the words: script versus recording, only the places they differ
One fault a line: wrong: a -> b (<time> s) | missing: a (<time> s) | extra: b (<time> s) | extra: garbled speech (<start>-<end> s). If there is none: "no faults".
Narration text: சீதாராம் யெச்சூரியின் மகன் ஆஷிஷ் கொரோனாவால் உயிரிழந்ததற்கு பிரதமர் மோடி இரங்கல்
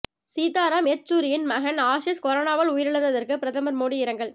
no faults